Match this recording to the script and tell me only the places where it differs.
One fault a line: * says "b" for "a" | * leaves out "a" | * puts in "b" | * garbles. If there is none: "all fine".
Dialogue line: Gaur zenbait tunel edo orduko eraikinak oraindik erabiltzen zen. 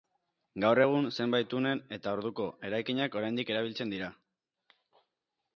* puts in "egun"
* says "eta" for "edo"
* says "dira" for "zen"